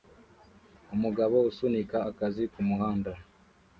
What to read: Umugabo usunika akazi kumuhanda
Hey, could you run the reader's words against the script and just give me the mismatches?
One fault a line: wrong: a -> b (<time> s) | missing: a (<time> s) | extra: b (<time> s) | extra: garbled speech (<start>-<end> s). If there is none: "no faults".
no faults